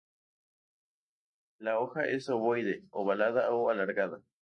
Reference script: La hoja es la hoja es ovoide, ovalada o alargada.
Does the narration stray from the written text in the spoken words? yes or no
yes